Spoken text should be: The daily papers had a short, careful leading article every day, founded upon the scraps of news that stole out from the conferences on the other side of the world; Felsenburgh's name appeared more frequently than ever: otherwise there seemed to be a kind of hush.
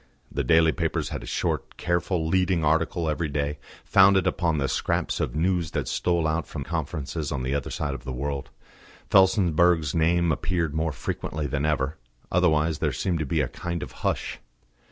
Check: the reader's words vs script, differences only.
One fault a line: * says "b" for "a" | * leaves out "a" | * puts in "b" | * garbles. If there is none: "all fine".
* leaves out "the"